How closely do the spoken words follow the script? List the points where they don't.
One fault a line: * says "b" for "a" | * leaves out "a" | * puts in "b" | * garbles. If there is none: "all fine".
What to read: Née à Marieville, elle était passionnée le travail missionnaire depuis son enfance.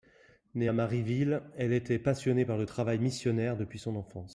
* puts in "par"